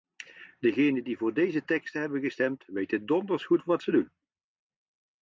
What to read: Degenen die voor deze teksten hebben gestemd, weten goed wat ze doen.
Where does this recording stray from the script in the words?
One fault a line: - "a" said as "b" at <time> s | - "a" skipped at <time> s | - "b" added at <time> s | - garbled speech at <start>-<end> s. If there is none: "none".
- "donders" added at 3.0 s